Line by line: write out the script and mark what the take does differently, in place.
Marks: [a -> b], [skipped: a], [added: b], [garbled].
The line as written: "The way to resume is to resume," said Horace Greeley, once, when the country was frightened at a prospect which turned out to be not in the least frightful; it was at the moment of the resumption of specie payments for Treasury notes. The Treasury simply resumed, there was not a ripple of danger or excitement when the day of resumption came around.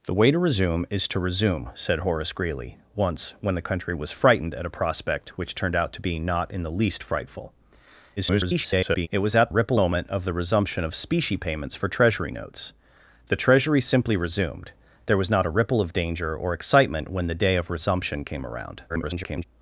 "The way to resume is to resume," said Horace Greeley, once, when the country was frightened at a prospect which turned out to be not in the least frightful; [garbled] it was at [the -> ripple] moment of the resumption of specie payments for Treasury notes. The Treasury simply resumed, there was not a ripple of danger or excitement when the day of resumption came around. [garbled]